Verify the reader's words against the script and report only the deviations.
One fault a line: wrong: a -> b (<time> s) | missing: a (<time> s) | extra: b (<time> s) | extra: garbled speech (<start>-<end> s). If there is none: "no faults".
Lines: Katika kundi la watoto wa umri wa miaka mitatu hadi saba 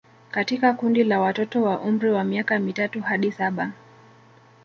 no faults